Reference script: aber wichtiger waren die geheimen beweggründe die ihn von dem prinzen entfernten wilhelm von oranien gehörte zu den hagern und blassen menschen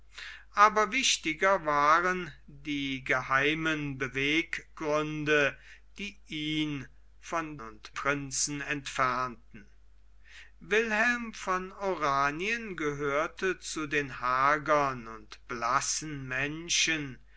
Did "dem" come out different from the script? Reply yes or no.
yes